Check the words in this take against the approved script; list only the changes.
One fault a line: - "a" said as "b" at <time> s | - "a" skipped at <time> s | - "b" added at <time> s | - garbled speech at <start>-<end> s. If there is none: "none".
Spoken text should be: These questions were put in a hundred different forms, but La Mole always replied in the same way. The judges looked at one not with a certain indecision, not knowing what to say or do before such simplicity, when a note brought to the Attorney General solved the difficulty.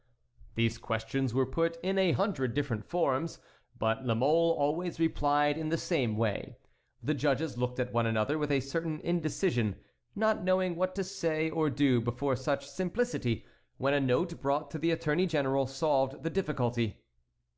- "not" said as "another" at 8.1 s